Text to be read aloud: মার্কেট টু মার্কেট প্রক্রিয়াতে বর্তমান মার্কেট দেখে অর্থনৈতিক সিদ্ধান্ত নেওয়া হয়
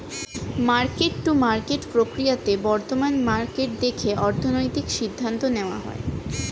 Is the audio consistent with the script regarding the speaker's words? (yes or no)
yes